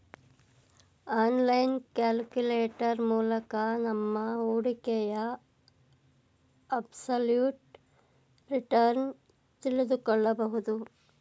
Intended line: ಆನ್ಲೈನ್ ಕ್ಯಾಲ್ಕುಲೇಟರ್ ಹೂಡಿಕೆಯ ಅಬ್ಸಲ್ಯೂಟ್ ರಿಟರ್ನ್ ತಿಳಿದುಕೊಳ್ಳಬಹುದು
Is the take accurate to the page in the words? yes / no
no